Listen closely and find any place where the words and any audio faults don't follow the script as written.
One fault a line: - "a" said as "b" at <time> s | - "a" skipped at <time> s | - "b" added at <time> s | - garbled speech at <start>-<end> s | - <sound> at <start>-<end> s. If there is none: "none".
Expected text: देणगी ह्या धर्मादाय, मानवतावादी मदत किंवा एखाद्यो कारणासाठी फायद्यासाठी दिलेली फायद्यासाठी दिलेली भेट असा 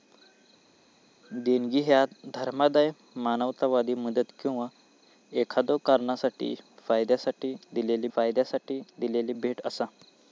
none